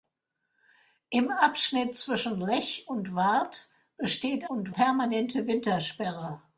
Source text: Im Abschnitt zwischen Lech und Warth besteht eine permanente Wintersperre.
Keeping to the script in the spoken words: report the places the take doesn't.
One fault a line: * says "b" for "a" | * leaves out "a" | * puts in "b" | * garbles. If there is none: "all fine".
* says "und" for "eine"